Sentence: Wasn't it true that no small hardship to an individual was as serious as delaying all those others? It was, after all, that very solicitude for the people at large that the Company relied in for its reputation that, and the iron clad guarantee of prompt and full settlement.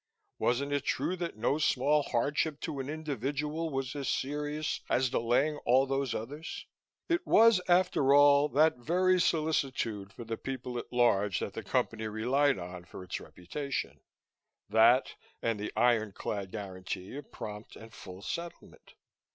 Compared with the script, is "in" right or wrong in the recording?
wrong